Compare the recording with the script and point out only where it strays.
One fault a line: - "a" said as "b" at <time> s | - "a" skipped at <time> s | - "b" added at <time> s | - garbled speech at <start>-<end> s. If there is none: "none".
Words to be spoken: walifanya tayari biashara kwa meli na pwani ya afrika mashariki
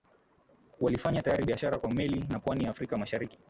none